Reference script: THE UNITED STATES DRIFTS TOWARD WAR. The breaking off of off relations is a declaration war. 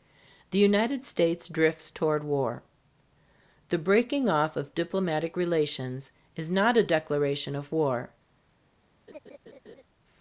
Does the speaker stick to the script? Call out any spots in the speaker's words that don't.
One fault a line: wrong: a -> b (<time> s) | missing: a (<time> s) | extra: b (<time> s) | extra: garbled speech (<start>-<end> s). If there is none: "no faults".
wrong: off -> diplomatic (4.7 s)
extra: not (6.5 s)
extra: of (7.5 s)